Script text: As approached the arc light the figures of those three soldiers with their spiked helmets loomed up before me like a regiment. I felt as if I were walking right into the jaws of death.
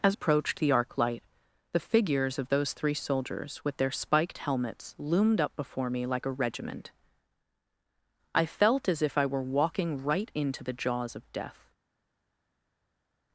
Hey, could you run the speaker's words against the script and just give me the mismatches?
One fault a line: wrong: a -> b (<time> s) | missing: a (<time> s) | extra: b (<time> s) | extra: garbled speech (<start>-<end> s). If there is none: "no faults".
no faults